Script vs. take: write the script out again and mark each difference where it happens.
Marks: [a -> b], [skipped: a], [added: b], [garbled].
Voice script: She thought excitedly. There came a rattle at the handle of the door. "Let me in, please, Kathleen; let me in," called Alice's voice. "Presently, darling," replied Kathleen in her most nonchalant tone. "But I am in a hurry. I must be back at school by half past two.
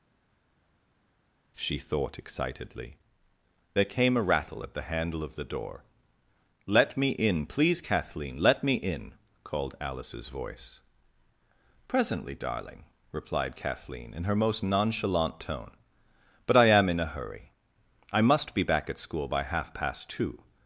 She thought excitedly. There came a rattle at the handle of the door. "Let me in, please, Kathleen; let me in," called Alice's voice. "Presently, darling," replied Kathleen in her most nonchalant tone. "But I am in a hurry. I must be back at school by half past two.